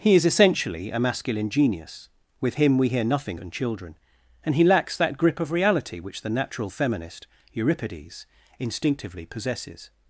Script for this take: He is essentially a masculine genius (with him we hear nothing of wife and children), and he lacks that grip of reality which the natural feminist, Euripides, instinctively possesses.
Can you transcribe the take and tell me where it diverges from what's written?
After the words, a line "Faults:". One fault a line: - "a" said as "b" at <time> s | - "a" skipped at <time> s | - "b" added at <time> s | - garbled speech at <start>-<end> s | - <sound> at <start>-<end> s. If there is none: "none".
He is essentially a masculine genius (with him we hear nothing and children), and he lacks that grip of reality which the natural feminist, Euripides, instinctively possesses.
Faults:
- "of wife" skipped at 3.4 s